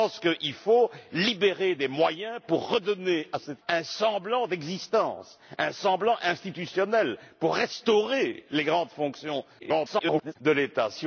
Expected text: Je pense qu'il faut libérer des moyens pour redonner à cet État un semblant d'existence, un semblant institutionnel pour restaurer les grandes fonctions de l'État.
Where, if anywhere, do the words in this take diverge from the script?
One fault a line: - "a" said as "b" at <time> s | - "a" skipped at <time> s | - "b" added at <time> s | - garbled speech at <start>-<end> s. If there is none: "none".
- "État" skipped at 3.6 s
- garbled speech at 9.6-10.4 s